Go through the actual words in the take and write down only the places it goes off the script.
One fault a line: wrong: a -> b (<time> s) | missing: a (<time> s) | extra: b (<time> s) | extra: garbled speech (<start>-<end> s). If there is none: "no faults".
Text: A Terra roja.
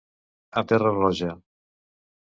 no faults